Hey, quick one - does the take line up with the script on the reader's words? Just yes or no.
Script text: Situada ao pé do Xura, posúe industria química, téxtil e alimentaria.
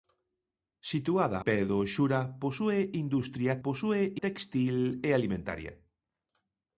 no